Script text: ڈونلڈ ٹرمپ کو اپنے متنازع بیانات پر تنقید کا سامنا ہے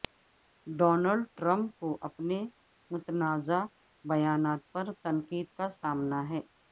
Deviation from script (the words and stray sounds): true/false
false